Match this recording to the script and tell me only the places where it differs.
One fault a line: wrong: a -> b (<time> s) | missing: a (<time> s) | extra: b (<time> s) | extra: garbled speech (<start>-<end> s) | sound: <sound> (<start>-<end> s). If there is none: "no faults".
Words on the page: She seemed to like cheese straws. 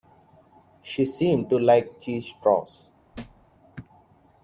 sound: thud (3.1-3.5 s)